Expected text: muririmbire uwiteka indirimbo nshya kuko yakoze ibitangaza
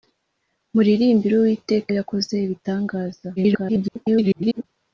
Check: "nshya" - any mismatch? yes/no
yes